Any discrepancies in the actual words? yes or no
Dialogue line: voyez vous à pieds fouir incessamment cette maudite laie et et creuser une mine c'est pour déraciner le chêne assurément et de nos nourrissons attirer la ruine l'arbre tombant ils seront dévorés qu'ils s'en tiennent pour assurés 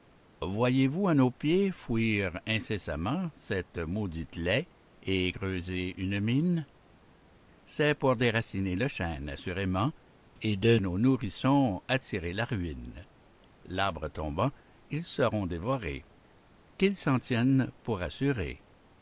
yes